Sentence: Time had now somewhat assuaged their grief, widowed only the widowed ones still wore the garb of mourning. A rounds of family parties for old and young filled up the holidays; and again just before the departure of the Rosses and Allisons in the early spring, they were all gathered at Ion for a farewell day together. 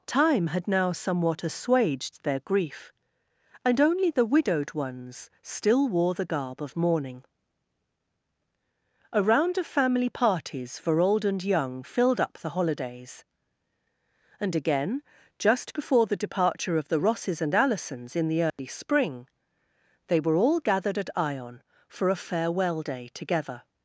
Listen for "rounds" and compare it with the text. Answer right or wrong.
wrong